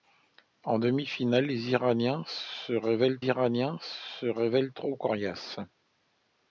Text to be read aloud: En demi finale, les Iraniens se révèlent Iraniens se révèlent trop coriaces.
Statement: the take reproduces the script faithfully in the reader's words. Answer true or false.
true